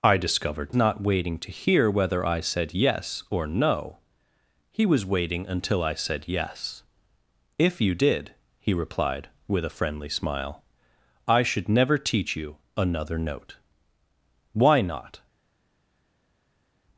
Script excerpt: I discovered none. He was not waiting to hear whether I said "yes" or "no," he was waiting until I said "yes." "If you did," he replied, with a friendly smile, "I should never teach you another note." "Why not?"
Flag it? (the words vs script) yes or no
yes